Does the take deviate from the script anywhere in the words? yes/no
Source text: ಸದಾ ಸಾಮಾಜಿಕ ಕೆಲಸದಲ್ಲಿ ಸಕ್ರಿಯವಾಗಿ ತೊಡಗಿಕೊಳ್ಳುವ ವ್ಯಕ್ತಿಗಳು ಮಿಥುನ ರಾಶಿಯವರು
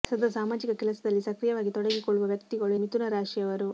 no